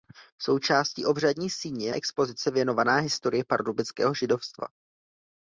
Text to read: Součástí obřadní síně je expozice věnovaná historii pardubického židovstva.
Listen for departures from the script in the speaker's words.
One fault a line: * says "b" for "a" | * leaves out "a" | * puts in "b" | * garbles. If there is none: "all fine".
all fine